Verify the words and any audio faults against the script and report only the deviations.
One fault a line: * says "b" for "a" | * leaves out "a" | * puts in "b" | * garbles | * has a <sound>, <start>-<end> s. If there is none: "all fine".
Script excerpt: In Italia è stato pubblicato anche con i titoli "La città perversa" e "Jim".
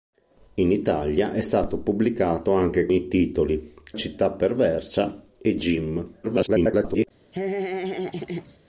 * leaves out "con"
* leaves out "La"
* garbles
* has a laugh, 7.3-8.6 s